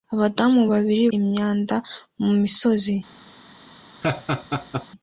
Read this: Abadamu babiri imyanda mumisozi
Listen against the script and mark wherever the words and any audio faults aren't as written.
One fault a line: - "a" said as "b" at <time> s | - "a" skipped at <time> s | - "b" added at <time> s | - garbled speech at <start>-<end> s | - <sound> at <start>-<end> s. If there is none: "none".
- laugh at 4.0-4.9 s